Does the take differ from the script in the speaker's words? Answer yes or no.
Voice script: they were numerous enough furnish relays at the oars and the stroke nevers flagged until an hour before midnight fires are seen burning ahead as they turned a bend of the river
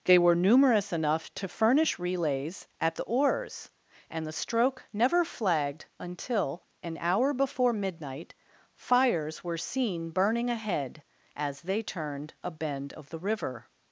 yes